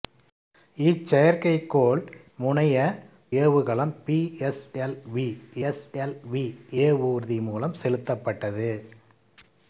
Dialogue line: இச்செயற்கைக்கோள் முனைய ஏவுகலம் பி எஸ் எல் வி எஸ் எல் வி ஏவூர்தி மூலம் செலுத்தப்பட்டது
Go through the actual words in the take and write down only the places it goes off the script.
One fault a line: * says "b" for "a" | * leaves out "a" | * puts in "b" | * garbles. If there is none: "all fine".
all fine